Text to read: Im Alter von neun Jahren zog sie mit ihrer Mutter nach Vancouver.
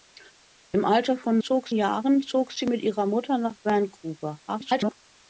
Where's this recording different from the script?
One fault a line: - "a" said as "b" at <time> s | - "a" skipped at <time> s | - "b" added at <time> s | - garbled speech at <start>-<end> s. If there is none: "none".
- "neun" said as "zog" at 1.4 s
- garbled speech at 4.5-4.9 s